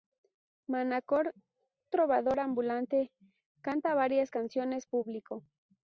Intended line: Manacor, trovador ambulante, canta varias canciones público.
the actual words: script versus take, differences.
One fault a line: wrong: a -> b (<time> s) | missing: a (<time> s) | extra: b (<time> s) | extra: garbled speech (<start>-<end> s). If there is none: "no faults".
no faults